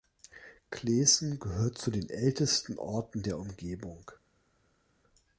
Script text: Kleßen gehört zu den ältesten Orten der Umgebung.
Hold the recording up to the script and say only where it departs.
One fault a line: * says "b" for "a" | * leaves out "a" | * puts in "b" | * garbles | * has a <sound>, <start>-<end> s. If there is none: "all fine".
all fine